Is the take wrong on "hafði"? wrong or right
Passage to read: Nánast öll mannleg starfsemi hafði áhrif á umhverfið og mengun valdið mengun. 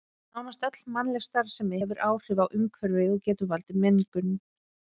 wrong